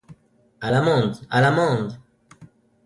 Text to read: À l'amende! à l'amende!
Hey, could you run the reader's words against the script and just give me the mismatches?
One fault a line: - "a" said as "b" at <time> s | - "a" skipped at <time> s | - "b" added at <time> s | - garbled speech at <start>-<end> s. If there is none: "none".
none